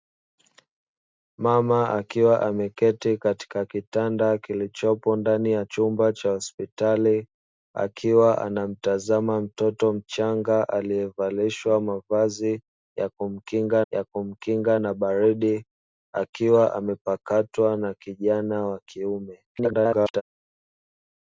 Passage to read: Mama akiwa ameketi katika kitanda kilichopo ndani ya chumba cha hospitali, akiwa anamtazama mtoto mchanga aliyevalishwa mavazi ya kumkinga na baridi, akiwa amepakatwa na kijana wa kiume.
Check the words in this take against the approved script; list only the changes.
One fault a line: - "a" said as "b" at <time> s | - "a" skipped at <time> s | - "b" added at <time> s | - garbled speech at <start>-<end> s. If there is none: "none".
- "ya kumkinga" added at 13.9 s
- garbled speech at 19.5-20.2 s